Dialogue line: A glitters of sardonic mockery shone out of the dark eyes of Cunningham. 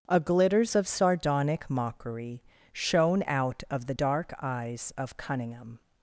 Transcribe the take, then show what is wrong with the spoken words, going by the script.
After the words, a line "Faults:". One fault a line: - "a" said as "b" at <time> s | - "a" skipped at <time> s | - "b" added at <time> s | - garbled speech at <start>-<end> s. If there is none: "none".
A glitters of sardonic mockery shone out of the dark eyes of Cunningham.
Faults:
none